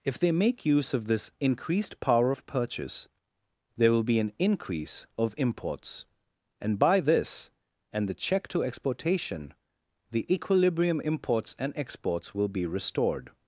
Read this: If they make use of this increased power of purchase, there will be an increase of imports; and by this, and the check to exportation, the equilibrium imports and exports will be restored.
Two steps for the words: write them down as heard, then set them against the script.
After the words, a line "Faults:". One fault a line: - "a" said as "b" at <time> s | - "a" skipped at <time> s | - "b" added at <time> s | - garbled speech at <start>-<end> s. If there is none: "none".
If they make use of this increased power of purchase, there will be an increase of imports; and by this, and the check to exportation, the equilibrium imports and exports will be restored.
Faults:
none